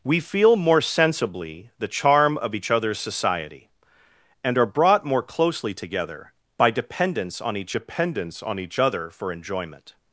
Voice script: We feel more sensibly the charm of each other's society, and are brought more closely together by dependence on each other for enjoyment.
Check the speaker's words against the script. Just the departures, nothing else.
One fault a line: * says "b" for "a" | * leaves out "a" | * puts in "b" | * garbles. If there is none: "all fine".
* puts in "dependence on each"